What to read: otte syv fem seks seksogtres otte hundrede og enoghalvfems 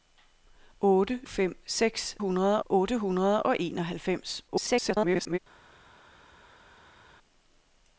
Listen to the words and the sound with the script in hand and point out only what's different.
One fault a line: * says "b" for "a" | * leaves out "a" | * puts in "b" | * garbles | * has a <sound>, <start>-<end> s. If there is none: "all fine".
* leaves out "syv"
* says "hundrede" for "seksogtres"
* garbles